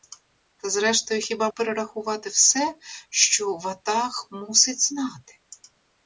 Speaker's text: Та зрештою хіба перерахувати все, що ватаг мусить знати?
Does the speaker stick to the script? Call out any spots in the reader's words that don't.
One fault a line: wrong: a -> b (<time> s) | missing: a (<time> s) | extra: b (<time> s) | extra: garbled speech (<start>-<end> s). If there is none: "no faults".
no faults